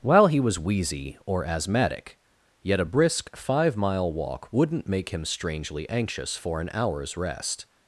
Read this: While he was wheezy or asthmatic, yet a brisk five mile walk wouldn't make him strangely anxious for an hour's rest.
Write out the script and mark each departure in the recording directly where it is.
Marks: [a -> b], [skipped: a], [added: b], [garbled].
While he was wheezy or asthmatic, yet a brisk five mile walk wouldn't make him strangely anxious for an hour's rest.